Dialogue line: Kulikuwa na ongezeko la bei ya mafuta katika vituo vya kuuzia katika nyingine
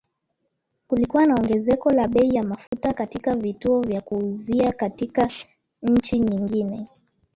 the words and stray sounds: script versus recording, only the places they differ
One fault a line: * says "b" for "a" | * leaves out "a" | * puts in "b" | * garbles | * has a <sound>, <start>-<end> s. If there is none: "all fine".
* has a dropout, 2.7-2.7 s
* puts in "nchi"